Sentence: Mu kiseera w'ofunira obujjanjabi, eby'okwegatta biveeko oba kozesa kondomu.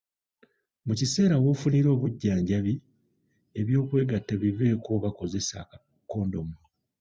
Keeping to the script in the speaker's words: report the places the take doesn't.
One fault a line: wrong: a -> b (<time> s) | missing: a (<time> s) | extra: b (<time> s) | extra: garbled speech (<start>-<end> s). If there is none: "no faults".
no faults